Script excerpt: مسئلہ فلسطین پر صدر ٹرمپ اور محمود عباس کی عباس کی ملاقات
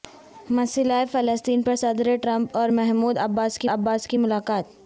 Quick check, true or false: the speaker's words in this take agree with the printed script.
true